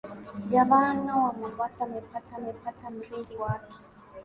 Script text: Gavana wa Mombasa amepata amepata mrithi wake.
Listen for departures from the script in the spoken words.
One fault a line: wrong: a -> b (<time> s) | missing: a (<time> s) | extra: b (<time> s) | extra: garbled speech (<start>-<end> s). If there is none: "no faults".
no faults